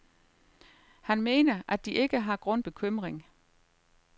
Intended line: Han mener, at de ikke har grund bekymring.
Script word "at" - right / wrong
right